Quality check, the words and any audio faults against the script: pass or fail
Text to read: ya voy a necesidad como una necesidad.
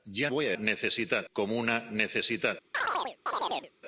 fail